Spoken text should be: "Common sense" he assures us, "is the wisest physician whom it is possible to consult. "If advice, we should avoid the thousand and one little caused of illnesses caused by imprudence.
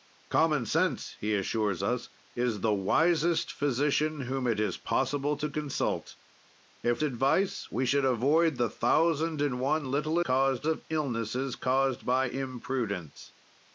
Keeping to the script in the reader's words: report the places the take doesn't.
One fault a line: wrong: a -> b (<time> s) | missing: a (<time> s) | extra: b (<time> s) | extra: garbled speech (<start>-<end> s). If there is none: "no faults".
no faults